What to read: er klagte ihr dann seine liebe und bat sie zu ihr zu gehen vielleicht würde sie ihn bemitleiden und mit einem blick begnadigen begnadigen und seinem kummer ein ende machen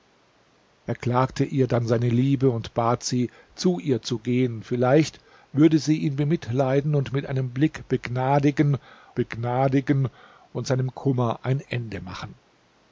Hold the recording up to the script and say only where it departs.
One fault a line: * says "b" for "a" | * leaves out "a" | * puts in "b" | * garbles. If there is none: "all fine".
all fine